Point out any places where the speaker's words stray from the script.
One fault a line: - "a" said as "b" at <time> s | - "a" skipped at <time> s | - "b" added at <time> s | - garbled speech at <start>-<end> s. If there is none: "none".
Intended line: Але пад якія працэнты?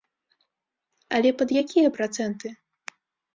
none